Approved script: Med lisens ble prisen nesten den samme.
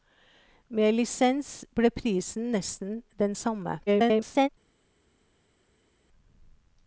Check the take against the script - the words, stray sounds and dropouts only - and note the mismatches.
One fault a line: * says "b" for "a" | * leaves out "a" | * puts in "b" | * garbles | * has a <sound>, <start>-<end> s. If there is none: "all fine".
* garbles